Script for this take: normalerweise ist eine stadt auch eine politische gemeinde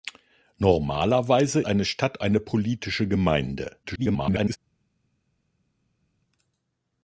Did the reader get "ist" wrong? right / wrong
wrong